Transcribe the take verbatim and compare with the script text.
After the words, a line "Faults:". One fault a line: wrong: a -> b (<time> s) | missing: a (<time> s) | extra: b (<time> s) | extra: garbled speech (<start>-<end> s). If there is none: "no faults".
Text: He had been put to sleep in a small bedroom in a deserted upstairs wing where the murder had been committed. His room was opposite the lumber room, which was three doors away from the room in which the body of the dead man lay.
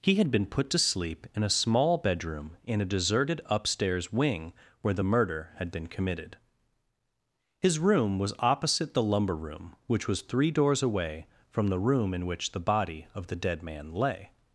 He had been put to sleep in a small bedroom in a deserted upstairs wing where the murder had been committed. His room was opposite the lumber room, which was three doors away from the room in which the body of the dead man lay.
Faults:
no faults